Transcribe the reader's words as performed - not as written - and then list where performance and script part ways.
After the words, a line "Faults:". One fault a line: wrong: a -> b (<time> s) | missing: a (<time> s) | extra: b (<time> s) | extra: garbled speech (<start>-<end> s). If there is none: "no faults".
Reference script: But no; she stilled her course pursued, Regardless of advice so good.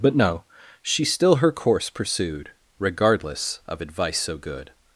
But no; she still her course pursued, Regardless of advice so good.
Faults:
wrong: stilled -> still (1.1 s)